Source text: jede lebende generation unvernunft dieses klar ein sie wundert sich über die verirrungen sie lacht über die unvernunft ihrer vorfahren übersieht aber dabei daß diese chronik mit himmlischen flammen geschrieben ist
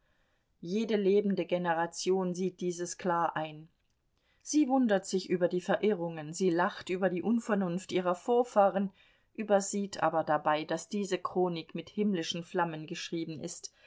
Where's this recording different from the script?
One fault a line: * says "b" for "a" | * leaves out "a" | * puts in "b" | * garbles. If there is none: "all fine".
* says "sieht" for "unvernunft"